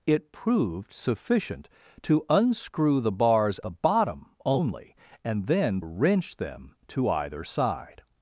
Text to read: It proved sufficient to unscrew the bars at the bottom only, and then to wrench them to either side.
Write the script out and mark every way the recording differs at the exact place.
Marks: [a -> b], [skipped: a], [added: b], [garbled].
It proved sufficient to unscrew the bars [skipped: at] the bottom only, and then [skipped: to] wrench them to either side.